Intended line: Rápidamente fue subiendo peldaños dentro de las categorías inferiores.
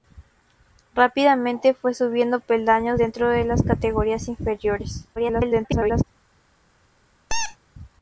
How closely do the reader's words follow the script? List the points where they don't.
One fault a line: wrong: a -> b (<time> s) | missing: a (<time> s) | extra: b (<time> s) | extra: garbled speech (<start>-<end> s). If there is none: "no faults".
extra: garbled speech (5.2-6.0 s)